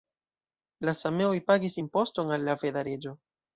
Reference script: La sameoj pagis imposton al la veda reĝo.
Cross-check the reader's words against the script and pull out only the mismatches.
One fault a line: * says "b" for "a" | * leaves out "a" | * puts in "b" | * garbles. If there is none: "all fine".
all fine